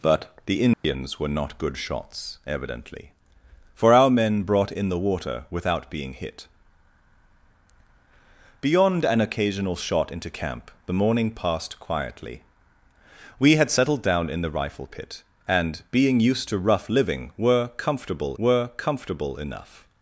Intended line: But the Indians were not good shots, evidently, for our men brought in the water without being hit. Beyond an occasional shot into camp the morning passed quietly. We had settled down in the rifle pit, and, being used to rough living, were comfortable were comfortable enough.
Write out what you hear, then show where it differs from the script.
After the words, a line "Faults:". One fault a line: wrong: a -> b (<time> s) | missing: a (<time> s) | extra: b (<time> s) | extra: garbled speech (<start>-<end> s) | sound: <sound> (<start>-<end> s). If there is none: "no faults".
But the Indians were not good shots, evidently, for our men brought in the water without being hit. Beyond an occasional shot into camp the morning passed quietly. We had settled down in the rifle pit, and, being used to rough living, were comfortable were comfortable enough.
Faults:
sound: dropout (0.7-0.8 s)